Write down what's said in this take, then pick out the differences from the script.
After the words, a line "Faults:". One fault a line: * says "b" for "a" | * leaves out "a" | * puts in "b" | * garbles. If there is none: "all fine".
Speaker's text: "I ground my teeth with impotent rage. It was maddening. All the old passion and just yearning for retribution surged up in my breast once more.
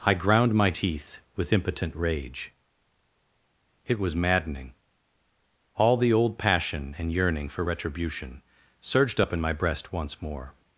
"I ground my teeth with impotent rage. It was maddening. All the old passion and yearning for retribution surged up in my breast once more.
Faults:
* leaves out "just"